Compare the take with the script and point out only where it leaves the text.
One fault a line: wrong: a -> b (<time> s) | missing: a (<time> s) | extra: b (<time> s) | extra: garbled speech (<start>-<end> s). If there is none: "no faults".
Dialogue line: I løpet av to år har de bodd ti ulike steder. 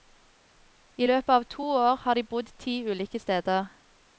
no faults